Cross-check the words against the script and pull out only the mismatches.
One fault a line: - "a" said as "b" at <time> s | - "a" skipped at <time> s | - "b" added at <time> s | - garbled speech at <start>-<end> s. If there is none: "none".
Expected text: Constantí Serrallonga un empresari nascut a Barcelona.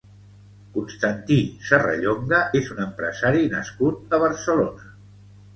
- "és" added at 2.6 s